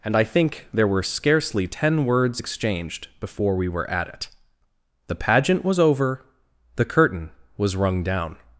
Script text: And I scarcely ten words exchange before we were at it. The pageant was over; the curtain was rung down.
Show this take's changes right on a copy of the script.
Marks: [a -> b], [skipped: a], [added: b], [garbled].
And I [added: think there were] scarcely ten words [exchange -> exchanged] before we were at it. The pageant was over; the curtain was rung down.